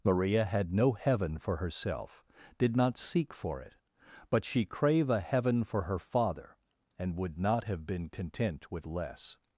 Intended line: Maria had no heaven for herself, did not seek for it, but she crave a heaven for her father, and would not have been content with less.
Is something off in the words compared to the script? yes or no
no